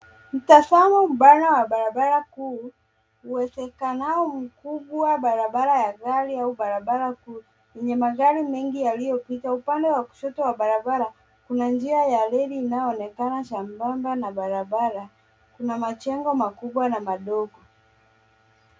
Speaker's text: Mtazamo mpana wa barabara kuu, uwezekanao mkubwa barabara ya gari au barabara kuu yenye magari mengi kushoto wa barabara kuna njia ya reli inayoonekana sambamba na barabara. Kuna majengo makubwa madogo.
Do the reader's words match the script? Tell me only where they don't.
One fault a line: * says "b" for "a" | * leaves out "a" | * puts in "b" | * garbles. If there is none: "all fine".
* puts in "yaliyopita Upande wa"
* puts in "na"